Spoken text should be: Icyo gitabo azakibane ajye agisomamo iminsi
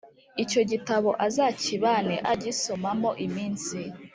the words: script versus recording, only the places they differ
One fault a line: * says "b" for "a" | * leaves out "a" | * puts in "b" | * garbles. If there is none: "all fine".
* leaves out "ajye"